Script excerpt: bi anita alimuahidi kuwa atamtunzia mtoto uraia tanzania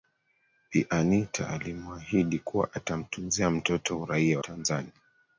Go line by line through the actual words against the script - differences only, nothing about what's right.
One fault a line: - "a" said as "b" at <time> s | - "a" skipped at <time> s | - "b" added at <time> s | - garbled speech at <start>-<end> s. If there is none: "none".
none